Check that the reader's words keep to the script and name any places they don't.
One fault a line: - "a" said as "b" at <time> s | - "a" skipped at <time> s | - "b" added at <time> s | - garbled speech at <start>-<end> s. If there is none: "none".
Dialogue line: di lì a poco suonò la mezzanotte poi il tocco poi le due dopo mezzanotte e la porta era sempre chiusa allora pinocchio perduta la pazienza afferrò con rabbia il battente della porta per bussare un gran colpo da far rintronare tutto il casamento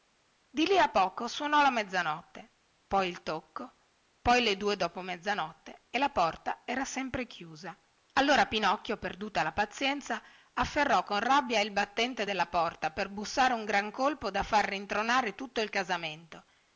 none